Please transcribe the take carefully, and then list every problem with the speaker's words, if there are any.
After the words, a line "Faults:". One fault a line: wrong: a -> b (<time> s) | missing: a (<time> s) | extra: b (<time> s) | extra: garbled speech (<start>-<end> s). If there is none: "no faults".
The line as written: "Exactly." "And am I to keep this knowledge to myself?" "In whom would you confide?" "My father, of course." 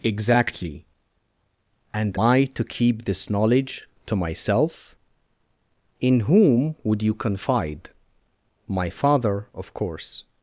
"Exactly." "And I to keep this knowledge to myself?" "In whom would you confide?" "My father, of course."
Faults:
missing: am (2.2 s)